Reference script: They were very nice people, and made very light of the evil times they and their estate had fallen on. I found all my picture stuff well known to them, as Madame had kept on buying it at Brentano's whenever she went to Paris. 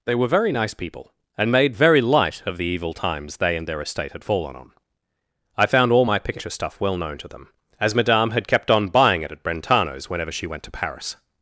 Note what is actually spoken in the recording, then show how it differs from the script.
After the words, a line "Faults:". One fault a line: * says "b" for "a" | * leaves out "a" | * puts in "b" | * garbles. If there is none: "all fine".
They were very nice people, and made very light of the evil times they and their estate had fallen on. I found all my picture stuff well known to them, as Madame had kept on buying it at Brentano's whenever she went to Paris.
Faults:
all fine